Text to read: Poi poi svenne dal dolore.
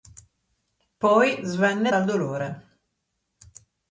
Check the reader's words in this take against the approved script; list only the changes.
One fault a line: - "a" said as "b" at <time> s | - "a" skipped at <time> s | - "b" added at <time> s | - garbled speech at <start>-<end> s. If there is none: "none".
- "poi" skipped at 1.4 s